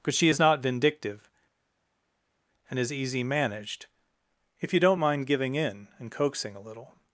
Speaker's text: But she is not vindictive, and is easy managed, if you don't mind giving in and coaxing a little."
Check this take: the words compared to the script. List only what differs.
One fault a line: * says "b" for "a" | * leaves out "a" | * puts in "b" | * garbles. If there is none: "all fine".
all fine